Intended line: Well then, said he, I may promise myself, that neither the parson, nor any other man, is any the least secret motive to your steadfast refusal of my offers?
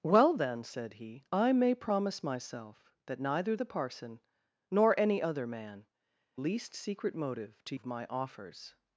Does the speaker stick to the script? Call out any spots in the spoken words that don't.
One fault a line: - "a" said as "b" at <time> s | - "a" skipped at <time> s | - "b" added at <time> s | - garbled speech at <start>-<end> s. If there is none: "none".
- "is any the" skipped at 5.9 s
- "your steadfast refusal" skipped at 7.7 s